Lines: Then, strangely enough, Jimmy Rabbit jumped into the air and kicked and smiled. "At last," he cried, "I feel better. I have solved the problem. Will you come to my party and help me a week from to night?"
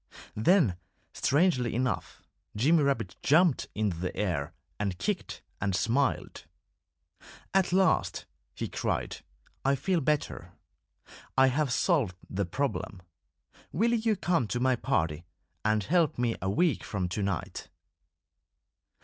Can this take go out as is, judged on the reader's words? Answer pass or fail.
pass